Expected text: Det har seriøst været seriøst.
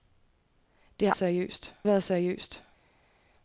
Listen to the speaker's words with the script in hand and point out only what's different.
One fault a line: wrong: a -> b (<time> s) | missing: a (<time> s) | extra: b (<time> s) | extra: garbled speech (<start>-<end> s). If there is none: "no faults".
no faults